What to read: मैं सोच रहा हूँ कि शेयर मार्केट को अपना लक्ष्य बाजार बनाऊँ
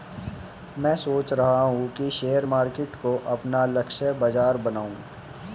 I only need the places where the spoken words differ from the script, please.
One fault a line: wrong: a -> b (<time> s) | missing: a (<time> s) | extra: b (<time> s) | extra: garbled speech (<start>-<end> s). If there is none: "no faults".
no faults